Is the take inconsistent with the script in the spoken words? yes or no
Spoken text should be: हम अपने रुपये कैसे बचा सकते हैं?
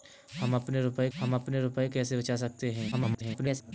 yes